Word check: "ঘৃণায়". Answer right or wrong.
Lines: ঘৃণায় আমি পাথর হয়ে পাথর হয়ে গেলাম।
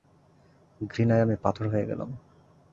right